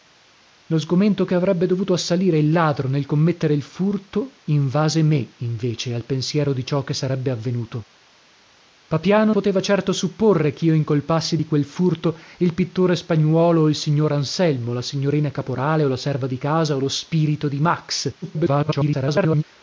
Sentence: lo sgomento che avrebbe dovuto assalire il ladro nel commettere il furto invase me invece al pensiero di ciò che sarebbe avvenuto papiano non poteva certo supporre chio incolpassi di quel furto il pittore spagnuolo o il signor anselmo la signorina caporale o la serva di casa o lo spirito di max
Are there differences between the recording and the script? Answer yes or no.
yes